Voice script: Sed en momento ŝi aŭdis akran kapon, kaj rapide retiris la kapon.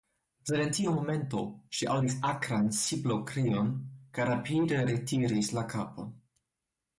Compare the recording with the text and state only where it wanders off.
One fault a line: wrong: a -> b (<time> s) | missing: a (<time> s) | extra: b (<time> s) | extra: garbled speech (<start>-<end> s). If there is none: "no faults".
extra: tiu (0.7 s)
wrong: kapon -> siblokrion (2.8 s)